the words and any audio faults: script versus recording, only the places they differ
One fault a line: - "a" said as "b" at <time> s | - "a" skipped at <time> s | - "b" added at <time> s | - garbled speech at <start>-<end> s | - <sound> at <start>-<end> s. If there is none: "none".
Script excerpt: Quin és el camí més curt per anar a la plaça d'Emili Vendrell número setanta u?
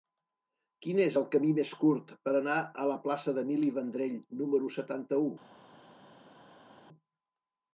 none